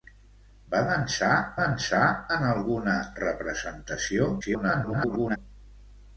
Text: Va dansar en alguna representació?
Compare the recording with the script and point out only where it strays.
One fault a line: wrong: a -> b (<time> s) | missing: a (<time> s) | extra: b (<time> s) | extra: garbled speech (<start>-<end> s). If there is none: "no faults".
extra: dansar (1.6 s)
extra: garbled speech (4.4-5.4 s)